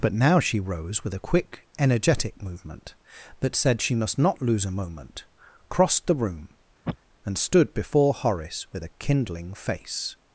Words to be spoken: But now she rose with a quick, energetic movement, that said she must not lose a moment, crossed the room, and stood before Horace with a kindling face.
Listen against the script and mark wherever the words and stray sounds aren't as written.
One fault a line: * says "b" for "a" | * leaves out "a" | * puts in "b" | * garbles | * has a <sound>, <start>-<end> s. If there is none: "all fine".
* has a sniff, 6.9-7.0 s